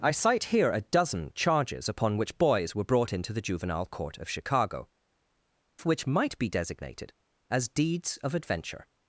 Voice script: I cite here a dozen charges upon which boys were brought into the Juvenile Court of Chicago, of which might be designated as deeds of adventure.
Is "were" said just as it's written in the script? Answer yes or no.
yes